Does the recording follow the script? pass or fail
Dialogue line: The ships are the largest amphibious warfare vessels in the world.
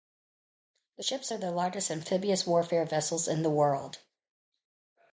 pass